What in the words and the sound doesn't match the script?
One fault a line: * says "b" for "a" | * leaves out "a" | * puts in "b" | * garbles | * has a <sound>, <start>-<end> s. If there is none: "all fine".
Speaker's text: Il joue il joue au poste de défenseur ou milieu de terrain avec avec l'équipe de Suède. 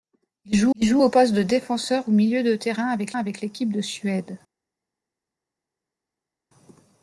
all fine